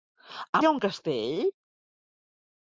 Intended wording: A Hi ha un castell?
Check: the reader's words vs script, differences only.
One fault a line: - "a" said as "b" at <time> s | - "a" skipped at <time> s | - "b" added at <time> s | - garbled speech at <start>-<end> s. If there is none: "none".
none